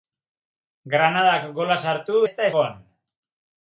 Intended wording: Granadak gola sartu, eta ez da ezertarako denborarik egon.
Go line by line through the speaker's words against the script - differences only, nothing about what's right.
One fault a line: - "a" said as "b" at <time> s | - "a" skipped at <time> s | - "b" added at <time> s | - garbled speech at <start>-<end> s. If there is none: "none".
- "eta" skipped at 2.2 s
- "ezertarako denborarik" skipped at 2.5 s